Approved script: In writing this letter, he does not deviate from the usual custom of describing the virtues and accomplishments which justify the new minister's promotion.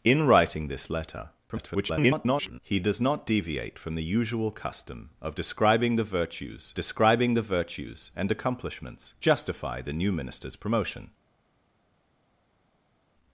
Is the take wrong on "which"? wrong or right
wrong